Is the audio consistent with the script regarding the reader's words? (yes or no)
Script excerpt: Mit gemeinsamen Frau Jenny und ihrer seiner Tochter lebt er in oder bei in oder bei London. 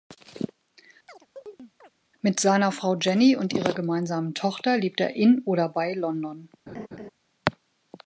no